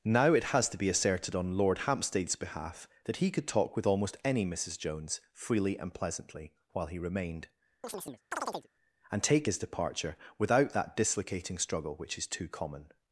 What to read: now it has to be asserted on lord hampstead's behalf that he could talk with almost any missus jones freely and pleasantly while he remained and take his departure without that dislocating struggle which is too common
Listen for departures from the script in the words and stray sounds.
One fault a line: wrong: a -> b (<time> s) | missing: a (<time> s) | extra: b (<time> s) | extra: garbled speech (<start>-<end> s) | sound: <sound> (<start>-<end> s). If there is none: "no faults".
sound: chirp (7.8-8.7 s)